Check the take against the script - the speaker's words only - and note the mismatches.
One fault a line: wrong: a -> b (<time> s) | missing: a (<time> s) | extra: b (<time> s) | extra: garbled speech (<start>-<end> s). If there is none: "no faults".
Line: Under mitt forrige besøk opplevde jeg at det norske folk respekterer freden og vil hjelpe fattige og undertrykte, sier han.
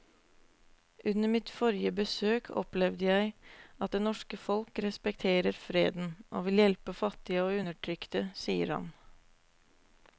no faults